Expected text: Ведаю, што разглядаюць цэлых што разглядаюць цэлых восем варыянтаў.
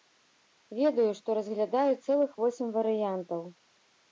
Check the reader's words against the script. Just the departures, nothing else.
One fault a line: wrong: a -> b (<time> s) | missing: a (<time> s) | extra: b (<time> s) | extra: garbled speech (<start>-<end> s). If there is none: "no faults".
missing: што разглядаюць цэлых (2.3 s)